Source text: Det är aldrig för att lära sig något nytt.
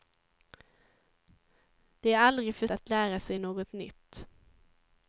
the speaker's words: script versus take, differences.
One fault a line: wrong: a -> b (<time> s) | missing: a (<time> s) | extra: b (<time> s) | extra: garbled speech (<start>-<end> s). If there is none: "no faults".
no faults